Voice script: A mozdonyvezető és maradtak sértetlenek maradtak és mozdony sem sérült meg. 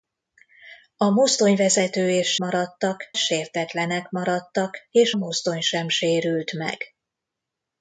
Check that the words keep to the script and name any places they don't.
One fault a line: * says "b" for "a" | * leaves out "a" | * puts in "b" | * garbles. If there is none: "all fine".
all fine